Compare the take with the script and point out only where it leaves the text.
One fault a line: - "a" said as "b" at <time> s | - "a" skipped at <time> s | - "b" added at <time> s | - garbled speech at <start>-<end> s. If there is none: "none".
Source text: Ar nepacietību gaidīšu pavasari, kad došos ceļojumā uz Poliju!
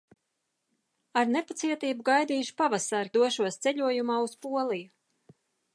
- "kad" skipped at 3.1 s